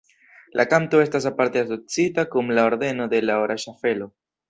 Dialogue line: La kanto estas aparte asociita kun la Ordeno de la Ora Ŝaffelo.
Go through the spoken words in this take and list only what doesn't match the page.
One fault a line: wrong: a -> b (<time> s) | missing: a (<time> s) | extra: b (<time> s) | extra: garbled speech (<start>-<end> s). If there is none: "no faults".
no faults